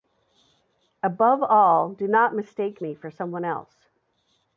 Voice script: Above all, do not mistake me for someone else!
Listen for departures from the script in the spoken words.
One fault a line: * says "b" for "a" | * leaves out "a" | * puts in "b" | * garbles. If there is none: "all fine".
all fine